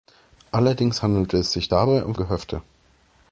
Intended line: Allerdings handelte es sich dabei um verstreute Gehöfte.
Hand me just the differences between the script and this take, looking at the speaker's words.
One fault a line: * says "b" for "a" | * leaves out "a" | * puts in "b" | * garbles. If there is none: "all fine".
* leaves out "verstreute"